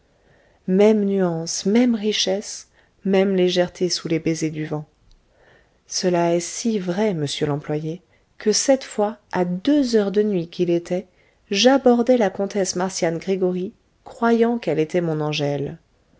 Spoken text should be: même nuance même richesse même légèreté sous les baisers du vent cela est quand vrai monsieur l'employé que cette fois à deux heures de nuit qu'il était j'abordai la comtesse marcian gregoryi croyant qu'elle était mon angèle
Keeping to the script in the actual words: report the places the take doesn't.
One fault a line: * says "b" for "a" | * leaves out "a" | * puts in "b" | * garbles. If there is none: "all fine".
* says "si" for "quand"